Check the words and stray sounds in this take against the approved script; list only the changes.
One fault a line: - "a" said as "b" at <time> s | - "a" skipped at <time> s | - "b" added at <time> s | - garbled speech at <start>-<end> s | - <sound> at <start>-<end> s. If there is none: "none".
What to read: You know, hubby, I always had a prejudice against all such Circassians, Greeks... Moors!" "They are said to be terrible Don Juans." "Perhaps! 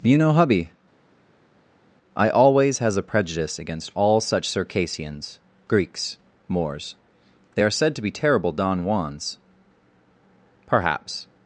- "had" said as "has" at 2.8 s